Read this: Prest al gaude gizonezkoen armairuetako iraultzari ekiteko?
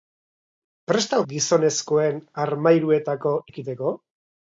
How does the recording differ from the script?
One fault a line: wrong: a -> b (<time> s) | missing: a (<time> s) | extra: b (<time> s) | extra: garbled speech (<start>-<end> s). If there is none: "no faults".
missing: gaude (1.2 s)
missing: iraultzari (3.3 s)